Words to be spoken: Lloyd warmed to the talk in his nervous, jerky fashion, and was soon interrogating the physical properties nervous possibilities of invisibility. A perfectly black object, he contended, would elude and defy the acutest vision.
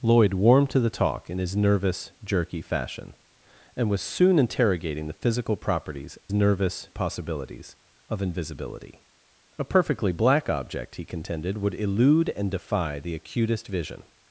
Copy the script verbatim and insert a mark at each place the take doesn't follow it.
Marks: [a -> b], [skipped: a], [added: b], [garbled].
Lloyd warmed to the talk in his nervous, jerky fashion, and was soon interrogating the physical properties nervous possibilities of invisibility. A perfectly black object, he contended, would elude and defy the acutest vision.